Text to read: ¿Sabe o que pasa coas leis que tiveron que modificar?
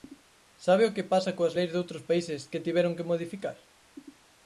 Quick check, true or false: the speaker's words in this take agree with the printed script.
false